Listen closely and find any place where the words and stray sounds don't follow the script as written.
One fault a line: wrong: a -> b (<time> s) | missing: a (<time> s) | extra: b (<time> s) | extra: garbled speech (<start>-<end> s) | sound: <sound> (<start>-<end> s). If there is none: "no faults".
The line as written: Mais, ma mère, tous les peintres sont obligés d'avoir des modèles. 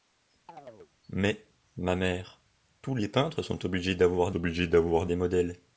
sound: chirp (0.5-0.9 s)
extra: obligés d'avoir (4.3 s)